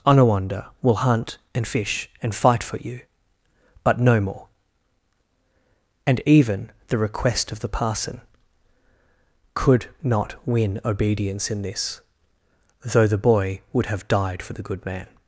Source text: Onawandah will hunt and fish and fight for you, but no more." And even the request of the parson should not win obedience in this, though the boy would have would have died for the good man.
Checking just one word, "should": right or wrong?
wrong